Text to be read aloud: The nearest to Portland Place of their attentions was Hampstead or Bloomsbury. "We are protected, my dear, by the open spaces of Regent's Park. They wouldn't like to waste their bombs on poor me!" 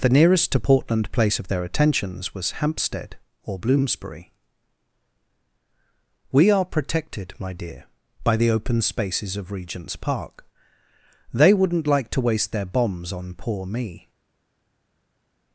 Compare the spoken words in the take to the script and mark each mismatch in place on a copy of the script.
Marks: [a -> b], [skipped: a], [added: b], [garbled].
The nearest to Portland Place of their attentions was Hampstead or Bloomsbury. "We are protected, my dear, by the open spaces of Regent's Park. They wouldn't like to waste their bombs on poor me!"